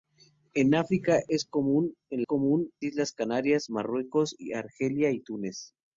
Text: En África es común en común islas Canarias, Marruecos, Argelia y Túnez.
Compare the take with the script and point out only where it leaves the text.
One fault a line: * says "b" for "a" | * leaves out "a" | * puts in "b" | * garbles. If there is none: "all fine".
all fine